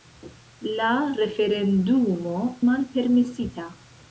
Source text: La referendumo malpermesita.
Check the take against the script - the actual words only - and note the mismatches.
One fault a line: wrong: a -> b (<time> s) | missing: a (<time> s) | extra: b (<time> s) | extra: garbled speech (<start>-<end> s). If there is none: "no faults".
no faults